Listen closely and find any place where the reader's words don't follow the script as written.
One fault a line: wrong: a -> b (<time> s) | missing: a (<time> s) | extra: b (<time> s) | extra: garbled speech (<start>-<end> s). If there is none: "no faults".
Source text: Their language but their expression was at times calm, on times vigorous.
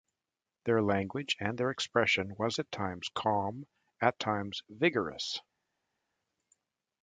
wrong: but -> and (1.4 s)
wrong: on -> at (4.0 s)